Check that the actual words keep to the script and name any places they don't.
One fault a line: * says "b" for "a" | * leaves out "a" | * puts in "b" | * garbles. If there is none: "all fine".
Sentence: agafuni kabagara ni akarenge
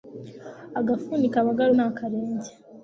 all fine